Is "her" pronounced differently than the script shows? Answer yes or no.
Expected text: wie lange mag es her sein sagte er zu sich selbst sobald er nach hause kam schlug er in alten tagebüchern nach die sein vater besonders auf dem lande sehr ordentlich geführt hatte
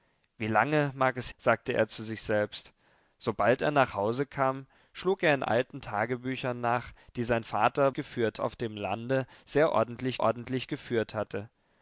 yes